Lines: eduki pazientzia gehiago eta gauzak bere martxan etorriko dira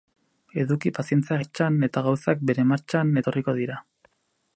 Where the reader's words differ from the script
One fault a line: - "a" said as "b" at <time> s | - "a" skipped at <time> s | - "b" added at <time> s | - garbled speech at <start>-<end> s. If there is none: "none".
- "gehiago" said as "martxan" at 1.4 s